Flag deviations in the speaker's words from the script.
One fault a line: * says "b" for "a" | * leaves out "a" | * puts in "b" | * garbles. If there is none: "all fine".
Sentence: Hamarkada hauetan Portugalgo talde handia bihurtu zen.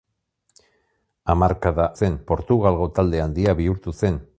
* says "zen" for "hauetan"